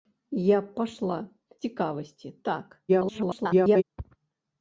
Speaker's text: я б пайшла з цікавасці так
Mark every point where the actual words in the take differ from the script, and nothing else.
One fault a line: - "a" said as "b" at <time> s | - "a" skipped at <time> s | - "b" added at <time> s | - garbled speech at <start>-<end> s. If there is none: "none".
- "з" skipped at 1.2 s
- garbled speech at 2.9-3.8 s